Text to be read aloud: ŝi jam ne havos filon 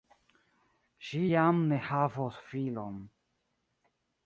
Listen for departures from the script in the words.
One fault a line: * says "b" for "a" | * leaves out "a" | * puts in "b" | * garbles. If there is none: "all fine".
all fine